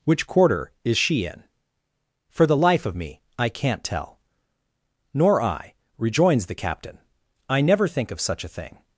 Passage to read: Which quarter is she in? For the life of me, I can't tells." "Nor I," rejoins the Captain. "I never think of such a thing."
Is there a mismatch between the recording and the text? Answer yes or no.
yes